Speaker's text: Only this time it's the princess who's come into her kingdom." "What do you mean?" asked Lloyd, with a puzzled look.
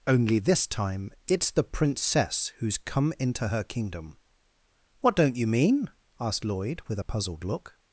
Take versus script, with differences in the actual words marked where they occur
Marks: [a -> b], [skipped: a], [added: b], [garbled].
Only this time it's the princess who's come into her kingdom." "What [do -> don't] you mean?" asked Lloyd, with a puzzled look.